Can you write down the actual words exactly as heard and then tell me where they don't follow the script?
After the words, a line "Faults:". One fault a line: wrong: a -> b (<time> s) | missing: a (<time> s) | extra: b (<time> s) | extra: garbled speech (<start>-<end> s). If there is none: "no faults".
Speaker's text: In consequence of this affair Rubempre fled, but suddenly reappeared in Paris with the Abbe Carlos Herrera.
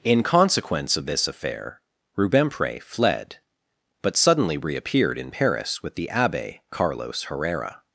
In consequence of this affair Rubempre fled, but suddenly reappeared in Paris with the Abbe Carlos Herrera.
Faults:
no faults